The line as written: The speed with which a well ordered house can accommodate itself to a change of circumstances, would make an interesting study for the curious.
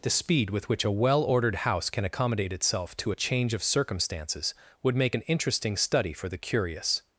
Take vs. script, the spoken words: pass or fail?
pass